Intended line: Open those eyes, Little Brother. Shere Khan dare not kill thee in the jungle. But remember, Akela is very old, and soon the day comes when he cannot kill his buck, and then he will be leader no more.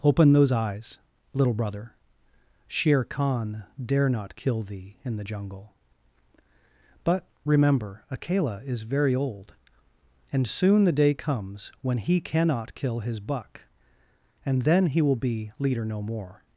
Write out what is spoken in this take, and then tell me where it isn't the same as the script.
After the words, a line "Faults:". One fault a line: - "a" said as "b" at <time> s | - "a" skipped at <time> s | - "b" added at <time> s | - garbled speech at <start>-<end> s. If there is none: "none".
Open those eyes, Little Brother. Shere Khan dare not kill thee in the jungle. But remember, Akela is very old, and soon the day comes when he cannot kill his buck, and then he will be leader no more.
Faults:
none